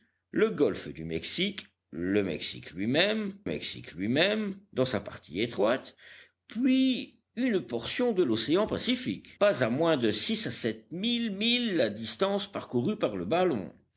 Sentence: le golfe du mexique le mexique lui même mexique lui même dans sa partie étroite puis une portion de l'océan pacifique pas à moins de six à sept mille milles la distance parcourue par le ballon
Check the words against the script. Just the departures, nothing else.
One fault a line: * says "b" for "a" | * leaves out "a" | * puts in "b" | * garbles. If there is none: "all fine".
all fine